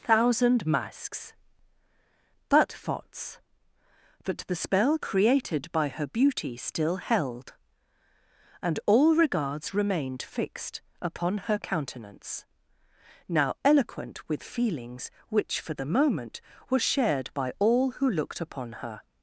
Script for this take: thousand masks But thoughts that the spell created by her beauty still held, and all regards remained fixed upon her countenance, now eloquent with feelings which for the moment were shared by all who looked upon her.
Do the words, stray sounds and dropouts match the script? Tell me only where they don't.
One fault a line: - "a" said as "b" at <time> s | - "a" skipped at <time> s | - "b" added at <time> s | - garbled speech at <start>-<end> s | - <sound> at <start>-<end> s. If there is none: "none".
none